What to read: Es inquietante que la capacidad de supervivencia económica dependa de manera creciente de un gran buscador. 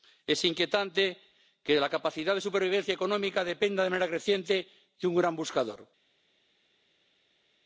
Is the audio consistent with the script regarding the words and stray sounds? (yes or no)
yes